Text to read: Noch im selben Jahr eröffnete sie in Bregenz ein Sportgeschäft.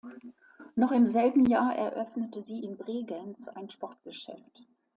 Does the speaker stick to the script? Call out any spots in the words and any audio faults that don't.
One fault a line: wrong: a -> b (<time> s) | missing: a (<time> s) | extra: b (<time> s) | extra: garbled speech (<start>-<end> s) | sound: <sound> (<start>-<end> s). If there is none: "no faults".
no faults